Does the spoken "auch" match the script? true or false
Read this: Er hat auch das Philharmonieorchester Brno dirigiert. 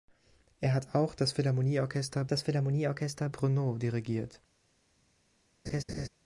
true